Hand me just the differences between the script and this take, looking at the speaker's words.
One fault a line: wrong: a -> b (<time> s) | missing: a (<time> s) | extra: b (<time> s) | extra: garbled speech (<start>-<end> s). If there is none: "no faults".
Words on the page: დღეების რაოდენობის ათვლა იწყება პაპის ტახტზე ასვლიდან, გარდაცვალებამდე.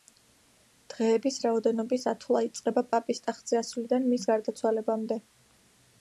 extra: მის (4.1 s)